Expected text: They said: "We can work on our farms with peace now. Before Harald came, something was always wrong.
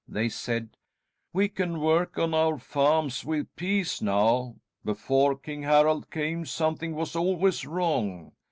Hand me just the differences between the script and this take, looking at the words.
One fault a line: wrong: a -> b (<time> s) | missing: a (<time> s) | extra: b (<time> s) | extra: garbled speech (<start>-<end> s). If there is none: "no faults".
extra: King (5.4 s)